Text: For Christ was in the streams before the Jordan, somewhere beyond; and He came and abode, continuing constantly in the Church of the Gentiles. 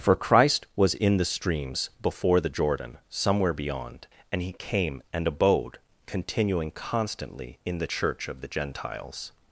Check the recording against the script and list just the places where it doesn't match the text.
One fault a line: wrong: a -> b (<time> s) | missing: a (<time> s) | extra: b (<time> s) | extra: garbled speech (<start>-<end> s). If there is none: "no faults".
no faults